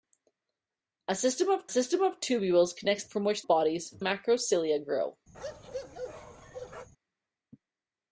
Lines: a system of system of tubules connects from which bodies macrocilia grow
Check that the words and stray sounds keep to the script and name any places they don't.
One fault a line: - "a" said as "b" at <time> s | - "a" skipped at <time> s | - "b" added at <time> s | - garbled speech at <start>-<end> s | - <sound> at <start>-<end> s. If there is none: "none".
- bark at 5.3-6.9 s